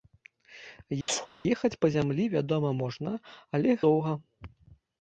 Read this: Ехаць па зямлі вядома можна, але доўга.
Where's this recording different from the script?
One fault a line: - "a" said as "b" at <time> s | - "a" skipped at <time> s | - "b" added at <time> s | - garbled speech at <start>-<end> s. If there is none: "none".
none